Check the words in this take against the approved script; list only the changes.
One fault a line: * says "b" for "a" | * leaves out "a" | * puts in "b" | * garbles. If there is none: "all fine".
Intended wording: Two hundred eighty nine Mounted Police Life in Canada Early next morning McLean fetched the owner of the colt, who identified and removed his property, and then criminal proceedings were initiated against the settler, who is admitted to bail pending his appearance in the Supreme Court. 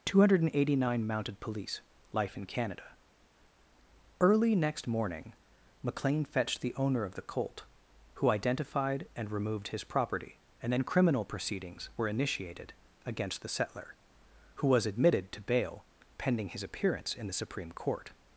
* says "was" for "is"